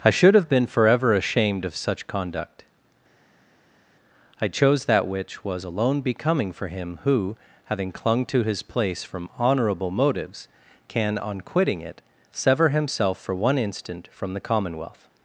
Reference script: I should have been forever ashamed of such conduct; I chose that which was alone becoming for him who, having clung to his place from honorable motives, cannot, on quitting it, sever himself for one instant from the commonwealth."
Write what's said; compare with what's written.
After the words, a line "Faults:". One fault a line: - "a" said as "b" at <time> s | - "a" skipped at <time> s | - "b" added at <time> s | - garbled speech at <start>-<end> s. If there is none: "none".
I should have been forever ashamed of such conduct; I chose that which was alone becoming for him who, having clung to his place from honorable motives, can, on quitting it, sever himself for one instant from the commonwealth."
Faults:
- "cannot" said as "can" at 10.9 s